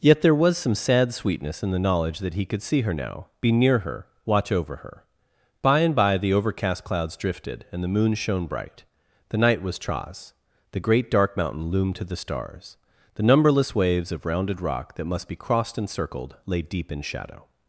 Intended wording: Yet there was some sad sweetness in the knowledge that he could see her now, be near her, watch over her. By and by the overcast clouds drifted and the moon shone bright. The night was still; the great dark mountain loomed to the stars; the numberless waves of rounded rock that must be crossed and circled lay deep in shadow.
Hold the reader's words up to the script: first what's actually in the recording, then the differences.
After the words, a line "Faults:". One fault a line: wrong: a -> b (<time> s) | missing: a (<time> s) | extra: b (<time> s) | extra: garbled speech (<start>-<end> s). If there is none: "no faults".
Yet there was some sad sweetness in the knowledge that he could see her now, be near her, watch over her. By and by the overcast clouds drifted and the moon shone bright. The night was tras; the great dark mountain loomed to the stars; the numberless waves of rounded rock that must be crossed and circled lay deep in shadow.
Faults:
wrong: still -> tras (9.8 s)